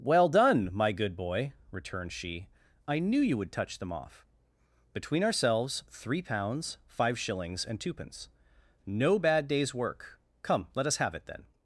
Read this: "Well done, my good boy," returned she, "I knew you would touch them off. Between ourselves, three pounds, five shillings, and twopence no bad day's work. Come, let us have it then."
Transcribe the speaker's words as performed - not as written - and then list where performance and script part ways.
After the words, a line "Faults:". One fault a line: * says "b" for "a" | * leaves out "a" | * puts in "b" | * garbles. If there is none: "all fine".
"Well done, my good boy," returned she, "I knew you would touch them off. Between ourselves, three pounds, five shillings, and twopence no bad day's work. Come, let us have it then."
Faults:
all fine